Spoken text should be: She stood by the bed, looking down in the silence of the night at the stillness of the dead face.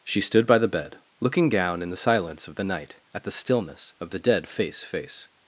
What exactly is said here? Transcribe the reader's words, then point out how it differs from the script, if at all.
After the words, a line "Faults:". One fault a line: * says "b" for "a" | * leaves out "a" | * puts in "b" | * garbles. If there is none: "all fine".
She stood by the bed, looking down in the silence of the night at the stillness of the dead face face.
Faults:
* puts in "face"